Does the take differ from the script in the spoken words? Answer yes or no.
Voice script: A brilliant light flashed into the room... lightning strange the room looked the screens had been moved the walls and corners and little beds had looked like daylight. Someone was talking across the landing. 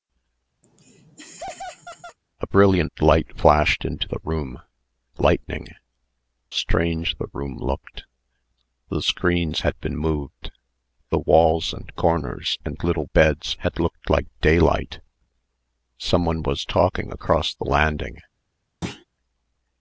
no